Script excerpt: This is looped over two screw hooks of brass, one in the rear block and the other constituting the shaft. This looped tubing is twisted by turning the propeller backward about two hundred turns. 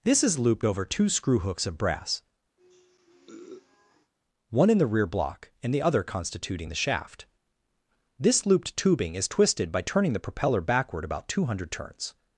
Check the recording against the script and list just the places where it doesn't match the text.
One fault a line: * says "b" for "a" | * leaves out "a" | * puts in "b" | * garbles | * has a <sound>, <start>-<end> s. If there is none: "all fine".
* has a sniff, 2.6-4.1 s